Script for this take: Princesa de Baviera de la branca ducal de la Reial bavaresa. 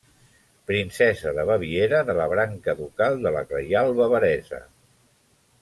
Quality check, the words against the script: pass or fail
pass